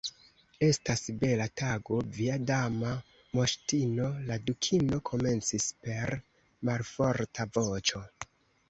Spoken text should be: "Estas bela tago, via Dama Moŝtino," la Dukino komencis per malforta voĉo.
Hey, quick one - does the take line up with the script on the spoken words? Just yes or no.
yes